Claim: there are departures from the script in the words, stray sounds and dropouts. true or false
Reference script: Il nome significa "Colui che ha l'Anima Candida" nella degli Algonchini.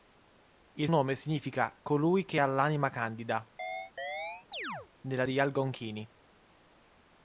true